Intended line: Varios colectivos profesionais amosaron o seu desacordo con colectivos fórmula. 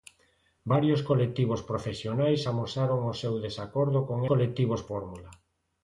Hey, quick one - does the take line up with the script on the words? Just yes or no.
yes